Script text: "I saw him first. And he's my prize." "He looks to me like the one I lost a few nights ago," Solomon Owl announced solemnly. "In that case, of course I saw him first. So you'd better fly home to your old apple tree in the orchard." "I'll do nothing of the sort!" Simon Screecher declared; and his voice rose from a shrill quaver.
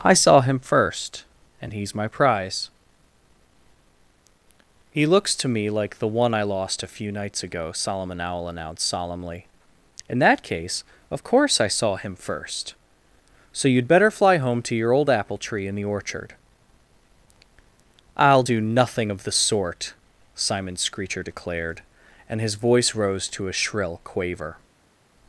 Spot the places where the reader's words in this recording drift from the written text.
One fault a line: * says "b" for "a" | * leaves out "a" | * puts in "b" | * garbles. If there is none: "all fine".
* says "to" for "from"